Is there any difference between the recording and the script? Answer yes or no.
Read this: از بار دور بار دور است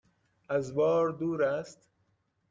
yes